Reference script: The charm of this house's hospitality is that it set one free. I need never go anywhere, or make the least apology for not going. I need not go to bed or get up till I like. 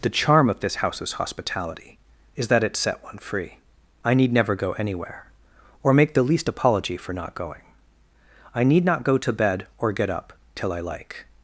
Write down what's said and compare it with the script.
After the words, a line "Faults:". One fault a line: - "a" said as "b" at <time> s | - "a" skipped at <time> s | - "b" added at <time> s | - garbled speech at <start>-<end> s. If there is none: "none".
The charm of this house's hospitality is that it set one free. I need never go anywhere, or make the least apology for not going. I need not go to bed or get up till I like.
Faults:
none